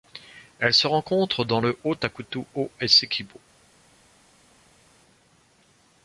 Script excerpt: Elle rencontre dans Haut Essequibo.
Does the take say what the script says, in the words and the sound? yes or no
no